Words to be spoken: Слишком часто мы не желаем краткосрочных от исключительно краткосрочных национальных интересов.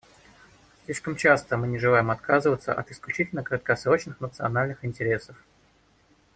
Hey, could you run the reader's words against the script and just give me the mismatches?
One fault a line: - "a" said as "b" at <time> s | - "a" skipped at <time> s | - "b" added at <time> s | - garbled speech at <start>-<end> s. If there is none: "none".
- "краткосрочных" said as "отказываться" at 2.1 s